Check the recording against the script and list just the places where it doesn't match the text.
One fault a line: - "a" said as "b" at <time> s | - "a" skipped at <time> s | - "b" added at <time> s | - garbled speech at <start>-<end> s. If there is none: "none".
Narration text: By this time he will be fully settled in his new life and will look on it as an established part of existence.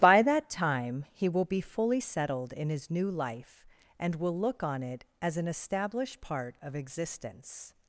- "this" said as "that" at 0.2 s